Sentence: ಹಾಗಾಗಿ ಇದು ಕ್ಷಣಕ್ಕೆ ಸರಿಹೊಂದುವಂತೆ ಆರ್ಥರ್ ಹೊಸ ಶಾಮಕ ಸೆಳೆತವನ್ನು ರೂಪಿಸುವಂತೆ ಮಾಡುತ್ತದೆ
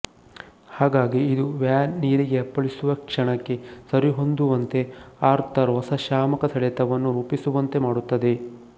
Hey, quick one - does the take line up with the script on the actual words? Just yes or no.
no